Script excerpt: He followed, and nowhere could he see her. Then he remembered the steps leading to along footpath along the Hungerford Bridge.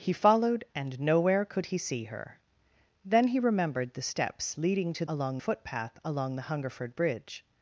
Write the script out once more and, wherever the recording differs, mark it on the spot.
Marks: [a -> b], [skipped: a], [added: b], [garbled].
He followed, and nowhere could he see her. Then he remembered the steps leading to along footpath along the Hungerford Bridge.